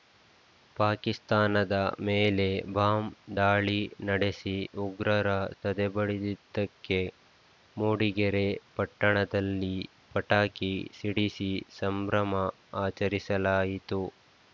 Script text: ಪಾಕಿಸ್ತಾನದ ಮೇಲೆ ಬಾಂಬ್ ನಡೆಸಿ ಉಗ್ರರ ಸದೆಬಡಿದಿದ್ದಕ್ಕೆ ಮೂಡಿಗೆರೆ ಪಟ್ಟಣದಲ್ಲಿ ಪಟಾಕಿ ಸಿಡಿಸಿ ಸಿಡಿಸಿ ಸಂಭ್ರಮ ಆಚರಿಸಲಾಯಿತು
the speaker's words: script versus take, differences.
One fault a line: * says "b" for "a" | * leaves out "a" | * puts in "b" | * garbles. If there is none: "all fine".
* puts in "ದಾಳಿ"
* leaves out "ಸಿಡಿಸಿ"